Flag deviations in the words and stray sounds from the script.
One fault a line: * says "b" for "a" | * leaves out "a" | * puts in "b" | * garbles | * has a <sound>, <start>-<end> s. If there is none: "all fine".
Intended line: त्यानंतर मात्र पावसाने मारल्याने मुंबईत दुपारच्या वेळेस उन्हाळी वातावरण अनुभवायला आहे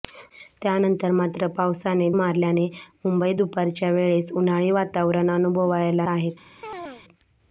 * has a chirp, 6.6-7.0 s